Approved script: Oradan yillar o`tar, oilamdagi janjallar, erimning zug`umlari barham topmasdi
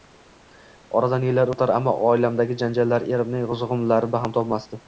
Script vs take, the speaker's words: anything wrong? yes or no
yes